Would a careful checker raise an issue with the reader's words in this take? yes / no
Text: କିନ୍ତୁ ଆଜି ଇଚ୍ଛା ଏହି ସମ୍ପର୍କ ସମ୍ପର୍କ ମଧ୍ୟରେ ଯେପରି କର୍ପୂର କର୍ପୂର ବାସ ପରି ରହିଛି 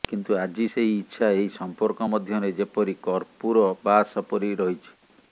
yes